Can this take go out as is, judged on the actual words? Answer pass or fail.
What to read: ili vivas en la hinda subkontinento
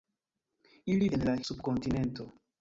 fail